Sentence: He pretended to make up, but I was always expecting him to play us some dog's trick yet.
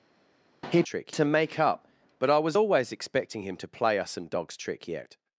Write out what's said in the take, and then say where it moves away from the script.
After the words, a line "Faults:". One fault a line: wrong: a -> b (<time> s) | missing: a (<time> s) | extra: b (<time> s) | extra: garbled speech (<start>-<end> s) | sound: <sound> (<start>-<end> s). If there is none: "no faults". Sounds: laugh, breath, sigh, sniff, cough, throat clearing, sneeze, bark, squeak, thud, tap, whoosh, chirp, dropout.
He trick to make up, but I was always expecting him to play us some dog's trick yet.
Faults:
wrong: pretended -> trick (0.8 s)